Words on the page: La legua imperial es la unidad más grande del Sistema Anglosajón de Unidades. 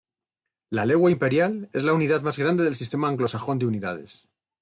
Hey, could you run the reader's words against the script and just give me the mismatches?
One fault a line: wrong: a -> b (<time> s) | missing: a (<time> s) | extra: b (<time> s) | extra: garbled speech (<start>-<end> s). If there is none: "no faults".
no faults